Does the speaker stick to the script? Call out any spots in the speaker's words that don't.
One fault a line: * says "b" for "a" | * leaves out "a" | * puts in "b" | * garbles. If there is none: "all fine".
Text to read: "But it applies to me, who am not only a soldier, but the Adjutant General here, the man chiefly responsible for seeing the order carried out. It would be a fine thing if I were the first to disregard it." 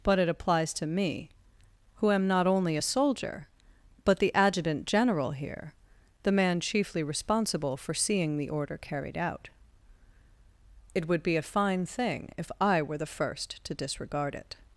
all fine